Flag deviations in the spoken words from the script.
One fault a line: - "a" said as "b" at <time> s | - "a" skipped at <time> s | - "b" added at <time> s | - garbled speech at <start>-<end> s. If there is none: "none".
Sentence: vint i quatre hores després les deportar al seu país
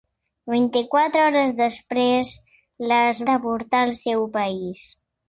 none